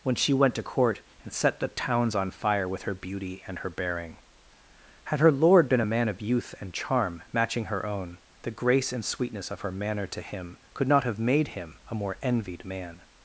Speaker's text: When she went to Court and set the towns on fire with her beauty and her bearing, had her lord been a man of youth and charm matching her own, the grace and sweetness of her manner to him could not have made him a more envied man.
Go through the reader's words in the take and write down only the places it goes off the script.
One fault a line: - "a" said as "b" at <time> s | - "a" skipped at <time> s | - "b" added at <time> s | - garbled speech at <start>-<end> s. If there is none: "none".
none